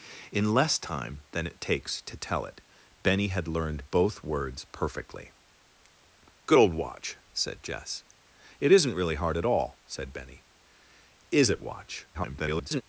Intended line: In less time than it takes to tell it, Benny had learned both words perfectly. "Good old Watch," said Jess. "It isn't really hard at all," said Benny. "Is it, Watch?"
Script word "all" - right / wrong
right